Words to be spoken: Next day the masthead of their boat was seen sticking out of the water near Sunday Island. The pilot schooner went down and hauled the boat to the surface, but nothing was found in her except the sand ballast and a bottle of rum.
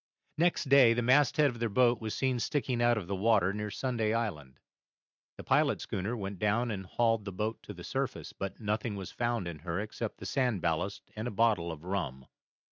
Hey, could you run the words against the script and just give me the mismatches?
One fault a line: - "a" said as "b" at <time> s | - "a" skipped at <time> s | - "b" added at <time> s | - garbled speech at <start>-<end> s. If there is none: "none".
none